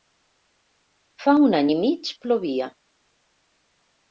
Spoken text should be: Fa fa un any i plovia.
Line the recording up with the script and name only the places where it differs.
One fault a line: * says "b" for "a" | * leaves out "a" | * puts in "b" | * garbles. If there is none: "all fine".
* leaves out "fa"
* puts in "mig"